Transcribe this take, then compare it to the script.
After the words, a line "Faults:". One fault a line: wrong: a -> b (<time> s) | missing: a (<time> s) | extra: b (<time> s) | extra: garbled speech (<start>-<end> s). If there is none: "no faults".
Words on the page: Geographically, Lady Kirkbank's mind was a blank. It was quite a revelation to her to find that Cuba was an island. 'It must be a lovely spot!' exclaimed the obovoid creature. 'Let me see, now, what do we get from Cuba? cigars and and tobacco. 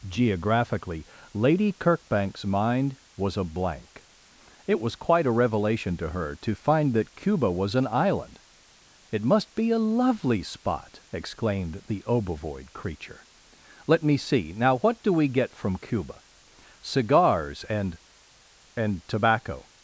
Geographically, Lady Kirkbank's mind was a blank. It was quite a revelation to her to find that Cuba was an island. 'It must be a lovely spot!' exclaimed the obovoid creature. 'Let me see, now, what do we get from Cuba? cigars and and tobacco.
Faults:
no faults